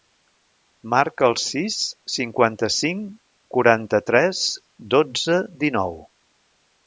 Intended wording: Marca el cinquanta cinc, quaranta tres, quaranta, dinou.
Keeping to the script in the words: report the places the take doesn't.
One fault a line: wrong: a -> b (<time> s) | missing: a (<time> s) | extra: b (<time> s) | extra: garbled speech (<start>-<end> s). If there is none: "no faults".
extra: sis (1.4 s)
wrong: quaranta -> dotze (5.0 s)